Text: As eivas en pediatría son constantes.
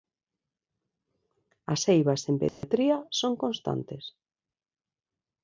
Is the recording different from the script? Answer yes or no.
no